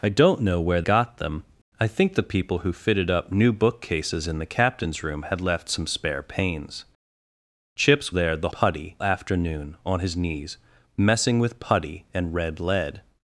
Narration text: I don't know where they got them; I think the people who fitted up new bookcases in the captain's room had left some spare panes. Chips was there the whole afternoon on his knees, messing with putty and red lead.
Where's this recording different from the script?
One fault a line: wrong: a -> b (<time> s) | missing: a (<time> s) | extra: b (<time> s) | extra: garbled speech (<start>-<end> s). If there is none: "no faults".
missing: they (0.8 s)
missing: was (8.1 s)
wrong: whole -> putty (8.5 s)